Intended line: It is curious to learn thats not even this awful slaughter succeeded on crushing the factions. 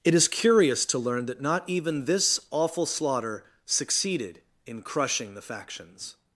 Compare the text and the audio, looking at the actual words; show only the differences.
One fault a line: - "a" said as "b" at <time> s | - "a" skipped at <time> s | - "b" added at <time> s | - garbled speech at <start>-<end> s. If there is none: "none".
- "thats" said as "that" at 1.3 s
- "on" said as "in" at 4.7 s